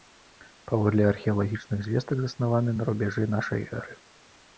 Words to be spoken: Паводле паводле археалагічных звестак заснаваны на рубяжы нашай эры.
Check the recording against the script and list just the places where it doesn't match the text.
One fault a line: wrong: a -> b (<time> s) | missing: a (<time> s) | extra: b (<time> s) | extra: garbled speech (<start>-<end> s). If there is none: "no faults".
missing: паводле (1.0 s)